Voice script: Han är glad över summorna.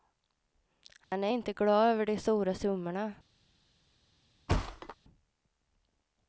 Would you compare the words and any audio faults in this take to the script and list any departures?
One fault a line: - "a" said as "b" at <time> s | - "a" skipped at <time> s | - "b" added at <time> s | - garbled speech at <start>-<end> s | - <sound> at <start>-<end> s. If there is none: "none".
- dropout at 1.0-1.1 s
- "inte" added at 1.3 s
- "de stora" added at 2.0 s
- thud at 4.5-5.0 s